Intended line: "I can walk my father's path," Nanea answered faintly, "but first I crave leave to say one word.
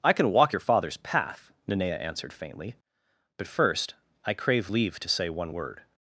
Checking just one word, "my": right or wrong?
wrong